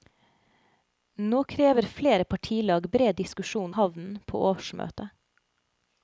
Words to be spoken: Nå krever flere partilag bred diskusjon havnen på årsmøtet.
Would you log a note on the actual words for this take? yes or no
no